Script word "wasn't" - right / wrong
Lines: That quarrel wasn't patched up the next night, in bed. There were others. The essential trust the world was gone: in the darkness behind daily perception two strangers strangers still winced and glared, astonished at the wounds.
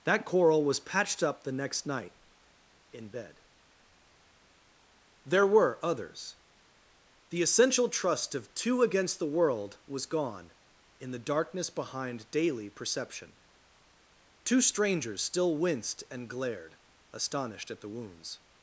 wrong